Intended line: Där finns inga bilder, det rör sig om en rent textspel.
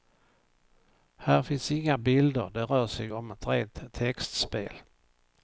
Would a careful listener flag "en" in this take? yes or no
yes